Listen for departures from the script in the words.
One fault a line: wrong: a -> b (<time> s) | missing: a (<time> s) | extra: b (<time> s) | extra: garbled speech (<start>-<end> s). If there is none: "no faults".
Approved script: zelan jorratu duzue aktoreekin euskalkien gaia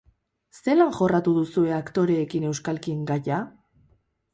no faults